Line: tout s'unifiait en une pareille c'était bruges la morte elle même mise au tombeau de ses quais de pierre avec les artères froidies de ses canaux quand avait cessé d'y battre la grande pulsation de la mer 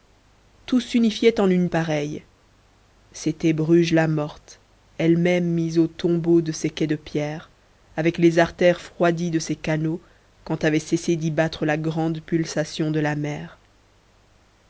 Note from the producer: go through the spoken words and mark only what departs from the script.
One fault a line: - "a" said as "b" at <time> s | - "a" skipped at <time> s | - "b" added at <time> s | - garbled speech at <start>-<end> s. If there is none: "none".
none